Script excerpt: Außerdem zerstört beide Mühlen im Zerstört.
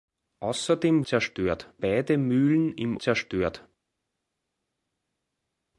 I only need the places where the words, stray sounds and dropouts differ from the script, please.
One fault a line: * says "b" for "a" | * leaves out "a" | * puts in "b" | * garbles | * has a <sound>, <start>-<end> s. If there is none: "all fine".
all fine